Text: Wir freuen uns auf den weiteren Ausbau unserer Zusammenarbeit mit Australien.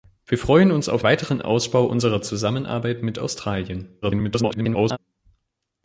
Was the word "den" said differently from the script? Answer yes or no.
yes